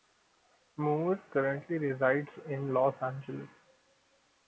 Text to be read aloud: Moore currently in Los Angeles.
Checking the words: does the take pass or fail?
fail